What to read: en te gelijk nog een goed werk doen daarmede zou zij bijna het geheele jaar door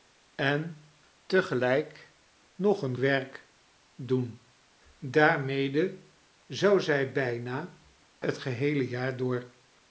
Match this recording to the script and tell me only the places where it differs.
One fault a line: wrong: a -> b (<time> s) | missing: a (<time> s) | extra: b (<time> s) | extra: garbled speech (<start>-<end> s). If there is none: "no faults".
missing: goed (3.0 s)